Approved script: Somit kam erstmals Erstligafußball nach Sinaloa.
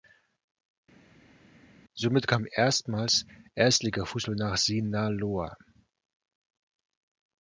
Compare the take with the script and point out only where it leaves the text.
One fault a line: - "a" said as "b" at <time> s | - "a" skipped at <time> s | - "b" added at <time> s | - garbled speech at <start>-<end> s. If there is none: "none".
none